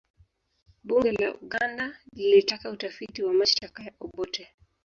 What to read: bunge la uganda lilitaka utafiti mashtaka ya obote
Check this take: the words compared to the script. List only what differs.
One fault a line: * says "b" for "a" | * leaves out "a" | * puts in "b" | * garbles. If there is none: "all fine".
* puts in "wa"